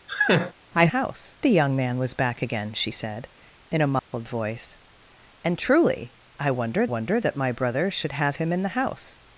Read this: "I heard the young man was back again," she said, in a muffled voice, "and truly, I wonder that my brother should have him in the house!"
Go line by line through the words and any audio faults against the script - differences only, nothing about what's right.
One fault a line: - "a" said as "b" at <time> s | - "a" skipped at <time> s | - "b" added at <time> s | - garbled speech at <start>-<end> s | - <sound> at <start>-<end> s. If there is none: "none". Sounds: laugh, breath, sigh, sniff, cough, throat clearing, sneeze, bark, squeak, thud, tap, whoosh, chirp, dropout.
- laugh at 0.1-0.5 s
- "heard" said as "house" at 0.9 s
- dropout at 4.0-4.1 s
- "wonder" added at 6.8 s